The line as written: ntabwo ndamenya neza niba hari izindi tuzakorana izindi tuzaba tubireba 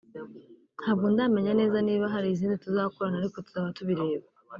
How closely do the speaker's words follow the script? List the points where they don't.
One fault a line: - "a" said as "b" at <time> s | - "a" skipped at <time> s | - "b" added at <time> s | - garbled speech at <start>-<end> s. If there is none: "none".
- "izindi" said as "ariko" at 3.2 s